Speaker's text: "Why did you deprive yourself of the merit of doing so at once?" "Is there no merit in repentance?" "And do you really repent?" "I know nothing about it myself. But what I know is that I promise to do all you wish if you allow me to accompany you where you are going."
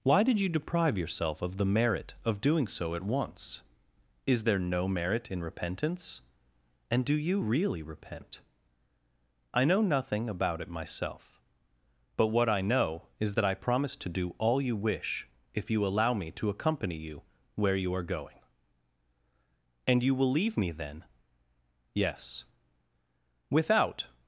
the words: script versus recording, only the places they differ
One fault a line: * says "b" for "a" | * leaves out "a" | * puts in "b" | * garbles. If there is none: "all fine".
* puts in "And you will leave me then Yes Without"